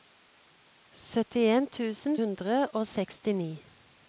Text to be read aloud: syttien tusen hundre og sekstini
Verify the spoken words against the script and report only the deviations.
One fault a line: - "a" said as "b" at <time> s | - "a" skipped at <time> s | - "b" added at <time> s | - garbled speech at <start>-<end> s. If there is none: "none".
none